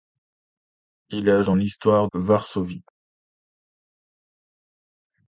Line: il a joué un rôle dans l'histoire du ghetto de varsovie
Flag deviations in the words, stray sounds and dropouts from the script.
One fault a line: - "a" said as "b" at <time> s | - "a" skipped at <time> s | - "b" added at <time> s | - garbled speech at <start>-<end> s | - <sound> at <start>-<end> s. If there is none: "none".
- "joué un rôle" skipped at 1.4 s
- "du ghetto de" skipped at 2.1 s